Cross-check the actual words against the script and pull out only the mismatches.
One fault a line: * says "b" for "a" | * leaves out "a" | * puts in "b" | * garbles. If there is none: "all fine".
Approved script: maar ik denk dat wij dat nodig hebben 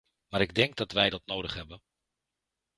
all fine